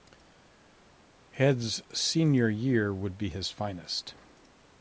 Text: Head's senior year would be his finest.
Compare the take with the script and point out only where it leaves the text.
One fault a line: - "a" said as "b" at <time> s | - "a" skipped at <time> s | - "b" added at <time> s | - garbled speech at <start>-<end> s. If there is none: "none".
none